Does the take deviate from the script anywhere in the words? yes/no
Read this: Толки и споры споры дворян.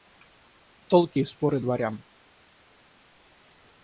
yes